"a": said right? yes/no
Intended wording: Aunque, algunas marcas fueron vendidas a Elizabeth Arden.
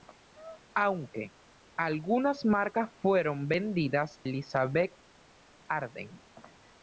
no